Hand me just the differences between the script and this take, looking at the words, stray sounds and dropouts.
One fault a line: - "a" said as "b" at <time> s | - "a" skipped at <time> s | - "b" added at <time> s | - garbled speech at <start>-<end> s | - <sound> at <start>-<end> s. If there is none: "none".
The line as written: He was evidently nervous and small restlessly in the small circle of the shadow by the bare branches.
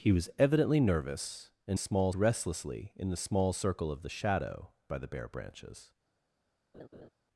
- laugh at 6.7-7.1 s